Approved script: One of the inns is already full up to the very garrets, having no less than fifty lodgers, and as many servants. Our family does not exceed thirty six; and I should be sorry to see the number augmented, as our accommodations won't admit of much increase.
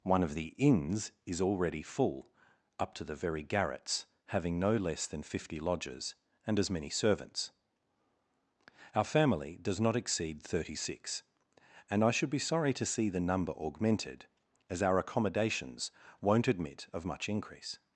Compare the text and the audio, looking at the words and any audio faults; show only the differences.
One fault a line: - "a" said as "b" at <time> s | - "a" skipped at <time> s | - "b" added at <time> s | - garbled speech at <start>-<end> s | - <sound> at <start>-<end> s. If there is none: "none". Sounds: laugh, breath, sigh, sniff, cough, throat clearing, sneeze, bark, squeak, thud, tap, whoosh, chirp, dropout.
none